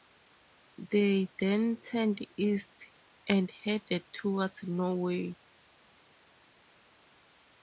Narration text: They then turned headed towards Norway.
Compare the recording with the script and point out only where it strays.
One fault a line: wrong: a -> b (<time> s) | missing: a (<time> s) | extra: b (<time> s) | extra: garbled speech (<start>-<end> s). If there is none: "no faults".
extra: east and (2.4 s)